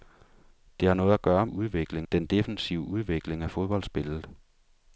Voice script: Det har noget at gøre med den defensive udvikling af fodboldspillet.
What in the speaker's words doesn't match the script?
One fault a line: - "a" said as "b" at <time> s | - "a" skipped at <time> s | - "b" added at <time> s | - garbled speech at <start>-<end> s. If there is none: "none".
- "med" said as "udvikling" at 1.4 s